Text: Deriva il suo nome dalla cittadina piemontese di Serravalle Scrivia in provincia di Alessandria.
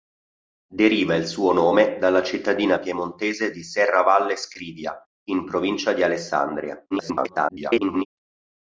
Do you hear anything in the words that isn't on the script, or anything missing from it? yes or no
yes